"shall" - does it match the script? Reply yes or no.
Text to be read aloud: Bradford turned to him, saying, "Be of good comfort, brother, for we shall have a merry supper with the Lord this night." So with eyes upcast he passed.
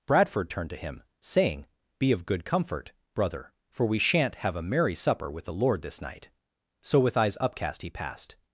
no